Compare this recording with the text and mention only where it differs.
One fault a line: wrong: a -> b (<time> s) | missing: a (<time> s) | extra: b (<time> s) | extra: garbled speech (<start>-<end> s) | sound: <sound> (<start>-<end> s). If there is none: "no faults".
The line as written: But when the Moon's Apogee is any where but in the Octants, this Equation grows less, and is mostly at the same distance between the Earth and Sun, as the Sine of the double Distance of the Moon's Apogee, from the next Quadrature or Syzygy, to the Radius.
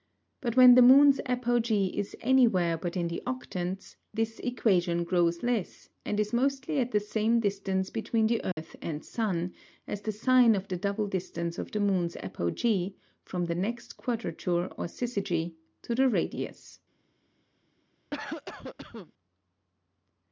sound: dropout (8.5-8.6 s)
sound: cough (18.1-19.1 s)